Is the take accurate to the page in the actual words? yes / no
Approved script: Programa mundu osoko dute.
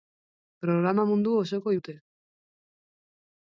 yes